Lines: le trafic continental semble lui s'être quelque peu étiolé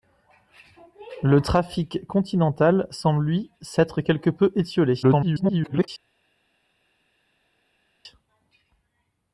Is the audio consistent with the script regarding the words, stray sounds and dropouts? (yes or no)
no